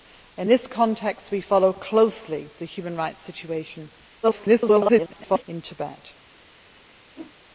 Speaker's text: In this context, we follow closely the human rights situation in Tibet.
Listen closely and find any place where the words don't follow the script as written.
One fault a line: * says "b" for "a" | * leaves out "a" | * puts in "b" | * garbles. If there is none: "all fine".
* garbles